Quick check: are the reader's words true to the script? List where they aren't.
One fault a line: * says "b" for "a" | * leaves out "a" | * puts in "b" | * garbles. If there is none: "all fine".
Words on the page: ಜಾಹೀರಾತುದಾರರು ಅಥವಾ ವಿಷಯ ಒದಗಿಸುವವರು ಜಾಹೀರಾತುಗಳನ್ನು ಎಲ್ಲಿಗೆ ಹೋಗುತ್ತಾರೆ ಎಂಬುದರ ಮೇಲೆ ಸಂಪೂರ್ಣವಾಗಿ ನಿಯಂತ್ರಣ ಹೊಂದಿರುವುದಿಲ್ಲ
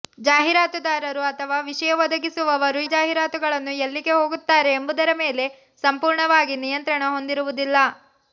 all fine